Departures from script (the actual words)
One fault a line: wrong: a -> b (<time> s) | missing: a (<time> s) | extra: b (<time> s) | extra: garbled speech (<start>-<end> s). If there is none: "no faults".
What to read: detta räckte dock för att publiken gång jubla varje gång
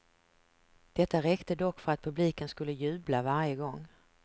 wrong: gång -> skulle (2.5 s)